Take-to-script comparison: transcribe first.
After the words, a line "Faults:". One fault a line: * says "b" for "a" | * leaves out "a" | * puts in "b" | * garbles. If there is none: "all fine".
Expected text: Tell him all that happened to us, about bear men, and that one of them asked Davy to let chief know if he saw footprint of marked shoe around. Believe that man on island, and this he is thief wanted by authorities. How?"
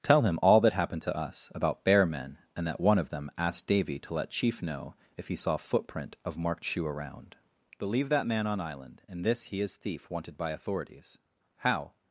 Tell him all that happened to us, about bear men, and that one of them asked Davy to let chief know if he saw footprint of marked shoe around. Believe that man on island, and this he is thief wanted by authorities. How?"
Faults:
all fine